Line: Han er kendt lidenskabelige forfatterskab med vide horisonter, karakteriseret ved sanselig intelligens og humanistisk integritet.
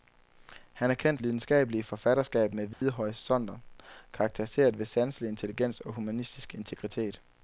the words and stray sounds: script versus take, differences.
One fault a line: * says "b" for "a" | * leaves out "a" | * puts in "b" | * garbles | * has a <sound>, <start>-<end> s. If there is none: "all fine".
* has a dropout, 2.7-2.8 s